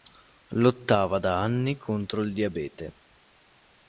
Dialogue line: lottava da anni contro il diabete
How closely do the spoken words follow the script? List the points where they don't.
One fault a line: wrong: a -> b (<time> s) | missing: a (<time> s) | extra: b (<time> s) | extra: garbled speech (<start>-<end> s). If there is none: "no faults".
no faults